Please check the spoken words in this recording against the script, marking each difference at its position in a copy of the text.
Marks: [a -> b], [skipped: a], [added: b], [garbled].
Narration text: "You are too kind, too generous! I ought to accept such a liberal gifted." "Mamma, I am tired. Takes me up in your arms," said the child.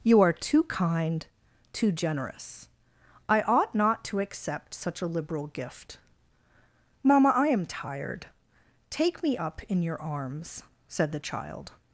"You are too kind, too generous! I ought [added: not] to accept such a liberal [gifted." -> gift] "Mamma, I am tired. [Takes -> Take] me up in your arms," said the child.